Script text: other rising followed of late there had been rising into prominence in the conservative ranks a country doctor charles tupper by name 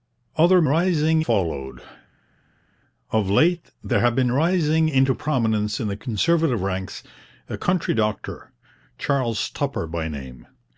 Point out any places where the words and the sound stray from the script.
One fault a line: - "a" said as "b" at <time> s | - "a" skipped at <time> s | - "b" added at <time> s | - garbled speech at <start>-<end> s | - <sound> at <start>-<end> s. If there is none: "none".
none